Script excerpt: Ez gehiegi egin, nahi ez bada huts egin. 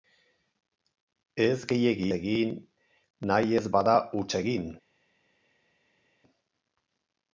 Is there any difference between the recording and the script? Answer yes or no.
no